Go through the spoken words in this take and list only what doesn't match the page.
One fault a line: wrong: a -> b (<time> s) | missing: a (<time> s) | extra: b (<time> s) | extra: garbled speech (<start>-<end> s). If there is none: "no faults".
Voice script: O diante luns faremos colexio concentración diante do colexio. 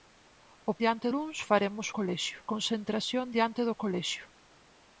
no faults